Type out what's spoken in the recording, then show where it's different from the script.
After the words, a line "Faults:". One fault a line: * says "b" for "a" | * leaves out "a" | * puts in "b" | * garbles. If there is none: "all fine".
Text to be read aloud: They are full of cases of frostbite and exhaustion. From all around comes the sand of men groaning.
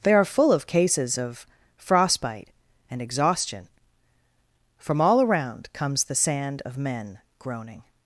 They are full of cases of frostbite and exhaustion. From all around comes the sand of men groaning.
Faults:
all fine